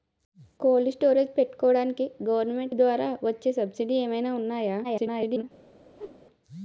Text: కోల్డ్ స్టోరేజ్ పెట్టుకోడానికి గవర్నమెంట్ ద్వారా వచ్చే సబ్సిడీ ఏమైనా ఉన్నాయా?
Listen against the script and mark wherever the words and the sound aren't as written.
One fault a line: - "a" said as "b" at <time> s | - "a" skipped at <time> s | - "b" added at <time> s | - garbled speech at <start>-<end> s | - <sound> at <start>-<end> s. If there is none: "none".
- garbled speech at 4.8-5.4 s
- whoosh at 6.0-6.2 s